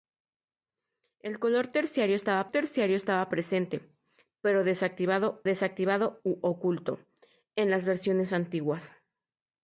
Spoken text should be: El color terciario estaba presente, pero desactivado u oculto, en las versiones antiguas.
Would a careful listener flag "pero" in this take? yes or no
no